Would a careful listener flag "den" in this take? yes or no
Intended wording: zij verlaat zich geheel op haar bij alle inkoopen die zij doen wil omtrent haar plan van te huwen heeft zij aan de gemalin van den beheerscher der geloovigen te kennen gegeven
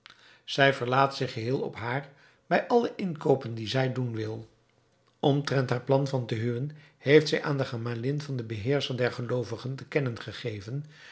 no